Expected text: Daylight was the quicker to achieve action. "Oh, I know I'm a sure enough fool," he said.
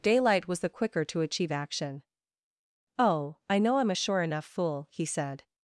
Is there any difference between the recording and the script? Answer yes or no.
no